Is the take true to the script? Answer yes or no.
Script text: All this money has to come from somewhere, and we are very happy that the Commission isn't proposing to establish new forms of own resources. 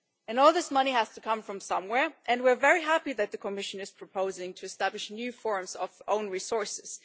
no